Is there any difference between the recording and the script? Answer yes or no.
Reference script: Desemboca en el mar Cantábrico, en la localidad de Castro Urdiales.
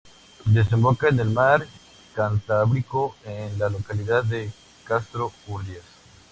no